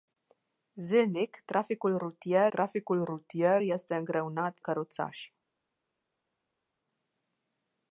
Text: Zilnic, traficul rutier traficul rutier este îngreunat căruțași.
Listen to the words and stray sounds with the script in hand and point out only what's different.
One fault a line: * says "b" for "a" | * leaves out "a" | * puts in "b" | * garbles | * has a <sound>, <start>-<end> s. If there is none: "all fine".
all fine